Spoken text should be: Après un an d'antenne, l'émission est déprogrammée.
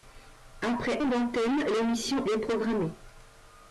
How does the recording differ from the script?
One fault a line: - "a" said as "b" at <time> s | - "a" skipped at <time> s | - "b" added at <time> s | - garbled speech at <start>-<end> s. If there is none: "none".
- "un" skipped at 1.0 s
- "est" skipped at 2.3 s